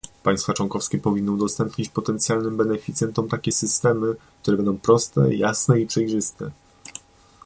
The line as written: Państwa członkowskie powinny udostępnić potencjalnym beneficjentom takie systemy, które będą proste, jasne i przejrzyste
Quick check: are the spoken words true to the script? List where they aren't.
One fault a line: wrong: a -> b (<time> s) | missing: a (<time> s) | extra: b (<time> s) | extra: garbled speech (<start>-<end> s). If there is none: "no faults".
no faults